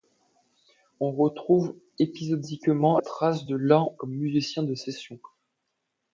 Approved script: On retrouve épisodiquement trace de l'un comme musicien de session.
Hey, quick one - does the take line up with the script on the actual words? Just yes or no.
yes